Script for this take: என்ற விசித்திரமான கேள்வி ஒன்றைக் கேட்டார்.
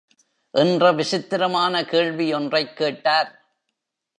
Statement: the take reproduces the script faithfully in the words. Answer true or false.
true